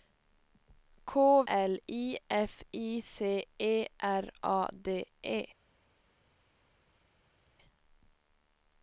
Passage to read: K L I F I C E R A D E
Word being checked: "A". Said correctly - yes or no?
yes